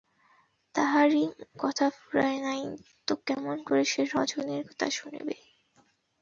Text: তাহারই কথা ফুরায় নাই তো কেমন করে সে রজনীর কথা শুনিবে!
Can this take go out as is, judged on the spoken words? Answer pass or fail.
pass